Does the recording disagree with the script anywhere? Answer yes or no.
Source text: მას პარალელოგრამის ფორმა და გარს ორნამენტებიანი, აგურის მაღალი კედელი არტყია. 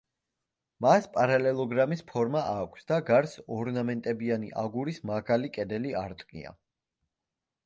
yes